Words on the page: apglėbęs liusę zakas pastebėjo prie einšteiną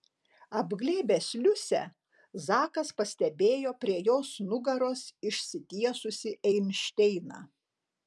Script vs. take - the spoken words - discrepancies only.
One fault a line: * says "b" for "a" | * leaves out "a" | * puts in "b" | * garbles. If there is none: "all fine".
* puts in "jos nugaros išsitiesusį"